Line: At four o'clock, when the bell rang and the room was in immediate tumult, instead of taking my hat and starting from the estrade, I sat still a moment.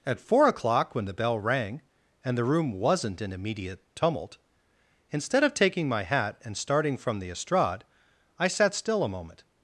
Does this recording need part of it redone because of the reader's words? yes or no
yes